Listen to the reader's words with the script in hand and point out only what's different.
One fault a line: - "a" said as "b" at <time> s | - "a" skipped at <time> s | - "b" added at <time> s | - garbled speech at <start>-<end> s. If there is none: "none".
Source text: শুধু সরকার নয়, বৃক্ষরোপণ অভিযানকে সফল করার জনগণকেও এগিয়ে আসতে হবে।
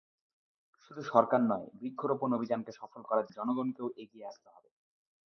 none